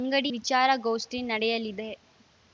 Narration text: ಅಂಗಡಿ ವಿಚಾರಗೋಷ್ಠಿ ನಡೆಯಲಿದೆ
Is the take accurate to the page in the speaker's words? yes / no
yes